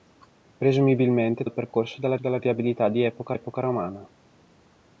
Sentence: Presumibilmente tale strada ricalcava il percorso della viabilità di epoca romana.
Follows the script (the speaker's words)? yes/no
no